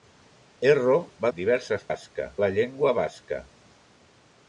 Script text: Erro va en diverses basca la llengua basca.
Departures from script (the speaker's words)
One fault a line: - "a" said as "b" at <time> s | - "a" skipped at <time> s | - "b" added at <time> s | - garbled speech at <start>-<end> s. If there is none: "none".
none